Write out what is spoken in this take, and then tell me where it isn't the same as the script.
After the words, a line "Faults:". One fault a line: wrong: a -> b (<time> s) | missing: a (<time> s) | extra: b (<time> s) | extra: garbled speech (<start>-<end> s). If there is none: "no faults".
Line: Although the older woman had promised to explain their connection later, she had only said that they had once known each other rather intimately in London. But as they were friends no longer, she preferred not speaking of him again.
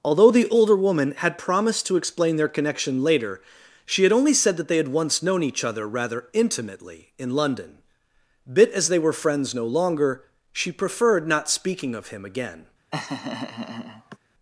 Although the older woman had promised to explain their connection later, she had only said that they had once known each other rather intimately in London. Bit as they were friends no longer, she preferred not speaking of him again.
Faults:
wrong: But -> Bit (8.5 s)